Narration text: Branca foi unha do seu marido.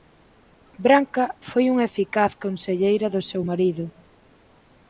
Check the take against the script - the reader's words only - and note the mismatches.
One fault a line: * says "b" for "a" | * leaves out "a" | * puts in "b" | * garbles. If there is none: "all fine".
* puts in "eficaz conselleira"